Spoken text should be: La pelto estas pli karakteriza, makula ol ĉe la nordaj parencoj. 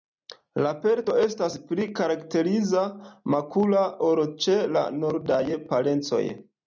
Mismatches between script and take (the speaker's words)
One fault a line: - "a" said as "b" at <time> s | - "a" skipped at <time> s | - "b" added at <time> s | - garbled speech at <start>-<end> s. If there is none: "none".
none